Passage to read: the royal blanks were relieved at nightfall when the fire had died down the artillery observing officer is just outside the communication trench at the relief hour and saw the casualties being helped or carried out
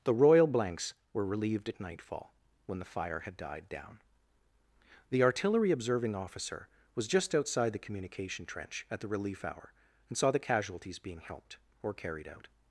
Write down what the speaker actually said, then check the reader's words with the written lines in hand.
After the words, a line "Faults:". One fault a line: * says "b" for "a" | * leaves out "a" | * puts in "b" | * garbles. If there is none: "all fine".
the royal blanks were relieved at nightfall when the fire had died down the artillery observing officer was just outside the communication trench at the relief hour and saw the casualties being helped or carried out
Faults:
* says "was" for "is"